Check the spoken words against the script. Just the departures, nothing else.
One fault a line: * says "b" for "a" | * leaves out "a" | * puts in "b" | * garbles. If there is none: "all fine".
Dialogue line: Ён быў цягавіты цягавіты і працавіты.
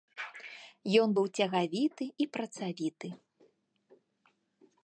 * leaves out "цягавіты"